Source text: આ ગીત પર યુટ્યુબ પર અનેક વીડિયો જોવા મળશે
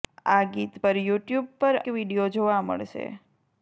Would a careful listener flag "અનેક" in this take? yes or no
yes